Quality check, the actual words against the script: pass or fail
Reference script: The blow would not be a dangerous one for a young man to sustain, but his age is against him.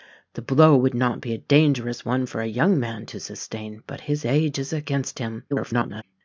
fail